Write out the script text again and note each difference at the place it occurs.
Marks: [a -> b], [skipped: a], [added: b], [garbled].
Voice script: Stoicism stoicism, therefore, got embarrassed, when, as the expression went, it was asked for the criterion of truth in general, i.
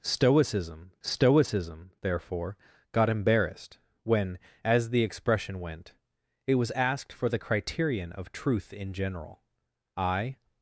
Stoicism stoicism, therefore, got embarrassed, when, as the expression went, it was asked for the criterion of truth in general, i.